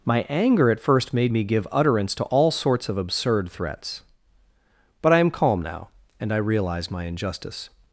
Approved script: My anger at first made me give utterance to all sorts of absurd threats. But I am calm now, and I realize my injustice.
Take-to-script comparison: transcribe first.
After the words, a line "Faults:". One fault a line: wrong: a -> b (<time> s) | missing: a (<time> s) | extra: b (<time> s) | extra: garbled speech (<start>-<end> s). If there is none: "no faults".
My anger at first made me give utterance to all sorts of absurd threats. But I am calm now, and I realize my injustice.
Faults:
no faults